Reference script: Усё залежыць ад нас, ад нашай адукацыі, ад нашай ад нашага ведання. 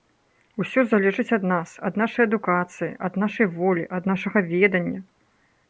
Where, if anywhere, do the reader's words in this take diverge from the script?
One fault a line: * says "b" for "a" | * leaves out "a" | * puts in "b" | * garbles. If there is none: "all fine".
* puts in "волі"